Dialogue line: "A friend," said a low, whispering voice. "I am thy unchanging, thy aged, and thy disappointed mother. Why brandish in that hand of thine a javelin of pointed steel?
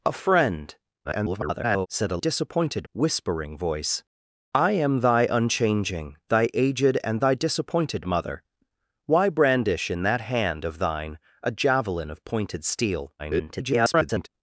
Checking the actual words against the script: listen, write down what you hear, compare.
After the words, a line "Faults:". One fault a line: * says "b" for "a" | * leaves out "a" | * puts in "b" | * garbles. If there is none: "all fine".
"A friend," [garbled] said a disappointed, whispering voice. "I am thy unchanging, thy aged, and thy disappointed mother. Why brandish in that hand of thine a javelin of pointed steel? [garbled]
Faults:
* garbles
* says "disappointed" for "low"
* garbles